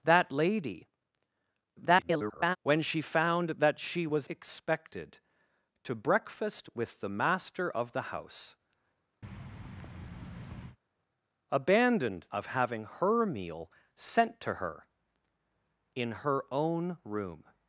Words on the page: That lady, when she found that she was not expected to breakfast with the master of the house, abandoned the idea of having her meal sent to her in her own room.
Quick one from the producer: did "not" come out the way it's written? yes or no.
no